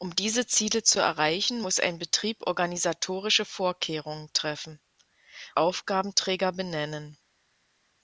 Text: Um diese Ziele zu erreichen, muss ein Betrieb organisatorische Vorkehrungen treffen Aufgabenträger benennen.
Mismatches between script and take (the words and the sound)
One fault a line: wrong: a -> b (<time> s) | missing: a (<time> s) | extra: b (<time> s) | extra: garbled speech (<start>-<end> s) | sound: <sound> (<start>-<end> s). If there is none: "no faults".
no faults